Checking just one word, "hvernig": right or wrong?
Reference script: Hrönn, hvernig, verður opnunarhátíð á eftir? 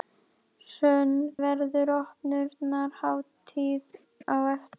wrong